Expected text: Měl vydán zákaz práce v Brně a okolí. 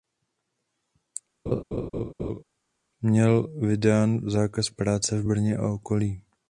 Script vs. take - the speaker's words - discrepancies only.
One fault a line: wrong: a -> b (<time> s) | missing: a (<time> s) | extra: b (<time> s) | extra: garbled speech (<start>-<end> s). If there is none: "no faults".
no faults